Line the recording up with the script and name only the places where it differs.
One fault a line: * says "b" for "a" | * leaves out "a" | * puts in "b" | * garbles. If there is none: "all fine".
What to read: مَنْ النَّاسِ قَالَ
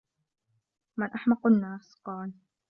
* puts in "أَحْمَقُ"